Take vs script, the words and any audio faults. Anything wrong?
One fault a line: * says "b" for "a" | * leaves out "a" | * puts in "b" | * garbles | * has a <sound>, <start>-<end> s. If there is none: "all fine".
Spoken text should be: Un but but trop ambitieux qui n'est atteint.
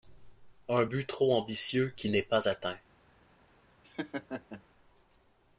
* leaves out "but"
* puts in "pas"
* has a laugh, 3.8-4.6 s